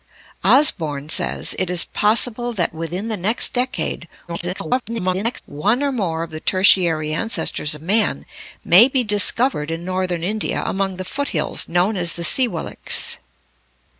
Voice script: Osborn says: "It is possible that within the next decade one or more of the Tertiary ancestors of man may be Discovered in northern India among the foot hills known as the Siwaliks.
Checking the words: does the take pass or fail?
fail